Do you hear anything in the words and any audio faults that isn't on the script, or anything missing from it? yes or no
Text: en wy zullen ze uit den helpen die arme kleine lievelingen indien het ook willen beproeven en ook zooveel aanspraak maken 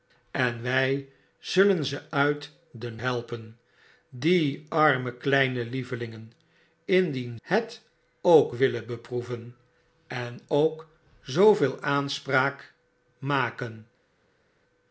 no